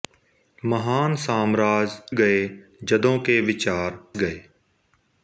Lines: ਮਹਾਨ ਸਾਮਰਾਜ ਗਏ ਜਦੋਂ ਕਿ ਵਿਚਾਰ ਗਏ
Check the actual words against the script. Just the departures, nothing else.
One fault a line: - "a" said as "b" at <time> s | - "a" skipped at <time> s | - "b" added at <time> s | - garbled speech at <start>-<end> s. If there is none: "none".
none